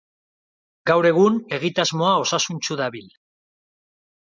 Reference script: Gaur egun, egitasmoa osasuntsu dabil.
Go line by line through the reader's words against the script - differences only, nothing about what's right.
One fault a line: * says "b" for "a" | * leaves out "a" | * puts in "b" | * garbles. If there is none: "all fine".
all fine